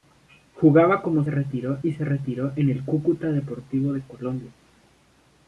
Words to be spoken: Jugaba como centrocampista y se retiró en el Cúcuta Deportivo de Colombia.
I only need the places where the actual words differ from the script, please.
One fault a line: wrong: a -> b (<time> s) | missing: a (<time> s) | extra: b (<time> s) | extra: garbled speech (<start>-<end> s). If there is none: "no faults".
wrong: centrocampista -> retiró (1.3 s)